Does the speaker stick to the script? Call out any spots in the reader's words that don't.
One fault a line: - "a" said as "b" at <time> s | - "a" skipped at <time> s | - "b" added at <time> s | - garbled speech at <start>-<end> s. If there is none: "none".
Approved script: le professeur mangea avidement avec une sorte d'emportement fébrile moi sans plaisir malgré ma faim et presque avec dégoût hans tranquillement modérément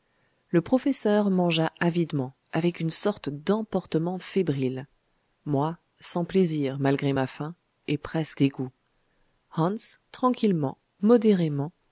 - "avec" skipped at 8.4 s